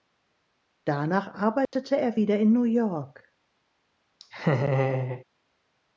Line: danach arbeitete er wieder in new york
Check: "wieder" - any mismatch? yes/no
no